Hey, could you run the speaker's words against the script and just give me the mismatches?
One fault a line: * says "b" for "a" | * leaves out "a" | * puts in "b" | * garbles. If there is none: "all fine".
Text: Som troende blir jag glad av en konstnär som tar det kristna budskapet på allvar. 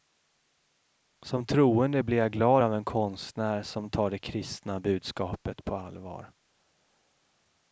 all fine